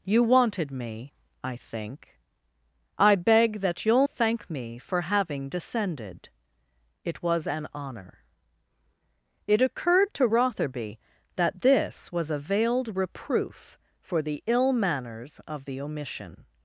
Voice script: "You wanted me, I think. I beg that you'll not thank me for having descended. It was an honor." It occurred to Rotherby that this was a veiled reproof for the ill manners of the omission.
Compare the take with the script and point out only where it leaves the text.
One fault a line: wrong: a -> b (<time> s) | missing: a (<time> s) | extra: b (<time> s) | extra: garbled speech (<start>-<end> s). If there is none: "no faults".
missing: not (4.1 s)